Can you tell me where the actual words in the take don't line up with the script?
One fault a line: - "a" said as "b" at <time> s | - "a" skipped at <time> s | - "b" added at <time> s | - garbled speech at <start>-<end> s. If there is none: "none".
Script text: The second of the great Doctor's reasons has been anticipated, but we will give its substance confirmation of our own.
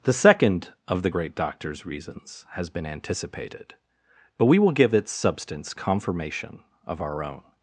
none